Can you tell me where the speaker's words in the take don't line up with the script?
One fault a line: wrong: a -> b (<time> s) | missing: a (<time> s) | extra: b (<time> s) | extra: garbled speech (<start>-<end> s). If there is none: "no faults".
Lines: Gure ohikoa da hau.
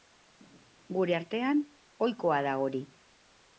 extra: artean (1.2 s)
wrong: hau -> hori (2.6 s)